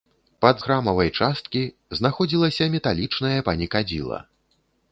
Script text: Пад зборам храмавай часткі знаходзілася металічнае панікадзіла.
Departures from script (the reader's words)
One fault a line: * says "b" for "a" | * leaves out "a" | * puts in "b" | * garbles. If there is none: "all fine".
* leaves out "зборам"